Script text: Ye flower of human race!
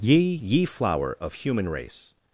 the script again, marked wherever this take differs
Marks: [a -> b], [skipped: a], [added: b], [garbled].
Ye [added: ye] flower of human race!